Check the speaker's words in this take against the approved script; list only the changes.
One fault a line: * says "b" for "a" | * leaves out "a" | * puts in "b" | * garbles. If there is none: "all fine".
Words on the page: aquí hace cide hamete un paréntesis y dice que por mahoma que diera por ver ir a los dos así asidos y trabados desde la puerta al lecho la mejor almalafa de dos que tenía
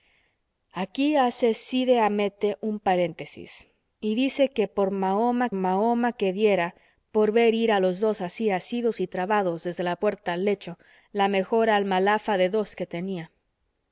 * puts in "mahoma"